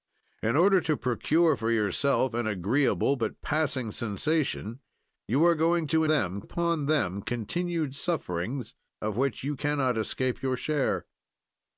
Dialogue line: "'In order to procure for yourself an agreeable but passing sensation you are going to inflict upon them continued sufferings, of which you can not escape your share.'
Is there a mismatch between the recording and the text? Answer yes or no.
yes